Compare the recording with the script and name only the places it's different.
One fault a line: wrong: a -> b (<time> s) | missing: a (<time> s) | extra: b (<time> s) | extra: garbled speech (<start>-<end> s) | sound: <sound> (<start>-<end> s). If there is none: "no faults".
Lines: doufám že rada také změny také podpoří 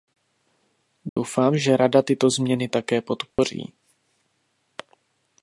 sound: dropout (1.1-1.2 s)
wrong: také -> tyto (2.0 s)
sound: dropout (3.3-3.4 s)